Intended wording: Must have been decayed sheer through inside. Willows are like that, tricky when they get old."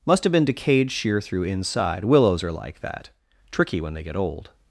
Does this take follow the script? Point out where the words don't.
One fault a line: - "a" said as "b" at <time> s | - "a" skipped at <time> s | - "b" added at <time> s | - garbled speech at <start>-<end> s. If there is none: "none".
none